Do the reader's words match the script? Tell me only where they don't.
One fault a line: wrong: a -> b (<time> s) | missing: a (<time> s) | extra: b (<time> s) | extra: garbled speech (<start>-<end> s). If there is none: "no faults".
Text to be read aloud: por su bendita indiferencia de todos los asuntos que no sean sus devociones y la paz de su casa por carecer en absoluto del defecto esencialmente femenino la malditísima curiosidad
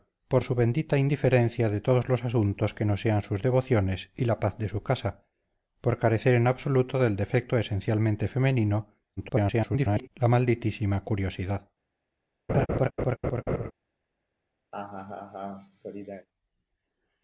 extra: garbled speech (9.2-10.1 s)